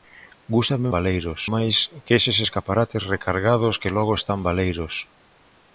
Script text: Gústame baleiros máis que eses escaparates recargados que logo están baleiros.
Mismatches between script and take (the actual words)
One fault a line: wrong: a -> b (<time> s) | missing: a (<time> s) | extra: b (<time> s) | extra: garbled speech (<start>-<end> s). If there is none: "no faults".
no faults